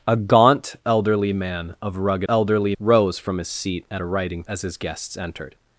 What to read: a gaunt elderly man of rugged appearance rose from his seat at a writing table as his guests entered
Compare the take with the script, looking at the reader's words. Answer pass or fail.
fail